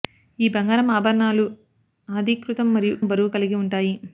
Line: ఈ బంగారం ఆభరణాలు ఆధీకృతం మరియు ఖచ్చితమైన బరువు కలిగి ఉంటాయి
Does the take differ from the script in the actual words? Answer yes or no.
yes